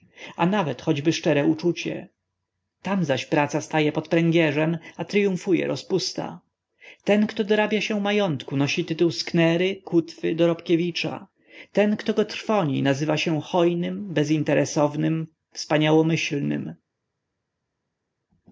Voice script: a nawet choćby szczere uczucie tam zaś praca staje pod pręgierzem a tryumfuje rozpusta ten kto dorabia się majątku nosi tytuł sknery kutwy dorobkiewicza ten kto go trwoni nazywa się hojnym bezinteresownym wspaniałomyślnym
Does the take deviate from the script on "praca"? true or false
false